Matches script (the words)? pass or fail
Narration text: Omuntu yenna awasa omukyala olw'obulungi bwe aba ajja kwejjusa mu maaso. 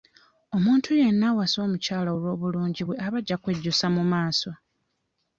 pass